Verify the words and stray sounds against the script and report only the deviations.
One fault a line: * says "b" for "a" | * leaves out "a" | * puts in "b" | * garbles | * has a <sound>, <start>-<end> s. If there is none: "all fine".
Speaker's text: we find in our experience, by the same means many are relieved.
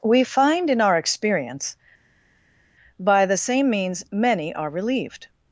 all fine